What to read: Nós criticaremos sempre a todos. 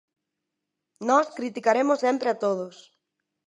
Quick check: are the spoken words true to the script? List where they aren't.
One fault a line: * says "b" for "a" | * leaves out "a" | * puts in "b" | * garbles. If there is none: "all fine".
all fine